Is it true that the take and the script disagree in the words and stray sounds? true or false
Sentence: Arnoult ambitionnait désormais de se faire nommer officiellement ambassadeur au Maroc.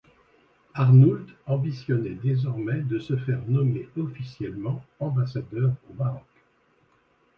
false